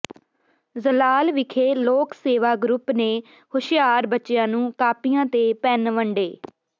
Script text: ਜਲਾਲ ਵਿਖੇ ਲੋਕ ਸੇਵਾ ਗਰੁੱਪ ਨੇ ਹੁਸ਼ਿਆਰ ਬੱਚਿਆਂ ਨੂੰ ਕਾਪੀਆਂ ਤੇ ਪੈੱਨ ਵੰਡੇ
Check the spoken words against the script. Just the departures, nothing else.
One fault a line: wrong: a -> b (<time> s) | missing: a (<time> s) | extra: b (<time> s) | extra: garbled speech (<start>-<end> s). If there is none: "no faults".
no faults